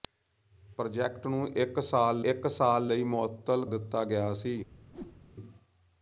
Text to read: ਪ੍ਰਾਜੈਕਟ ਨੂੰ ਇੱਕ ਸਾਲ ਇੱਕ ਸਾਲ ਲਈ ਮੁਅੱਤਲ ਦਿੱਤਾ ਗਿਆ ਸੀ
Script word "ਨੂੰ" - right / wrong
right